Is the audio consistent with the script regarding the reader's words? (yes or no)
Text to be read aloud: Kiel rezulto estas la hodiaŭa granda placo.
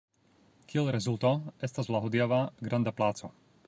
yes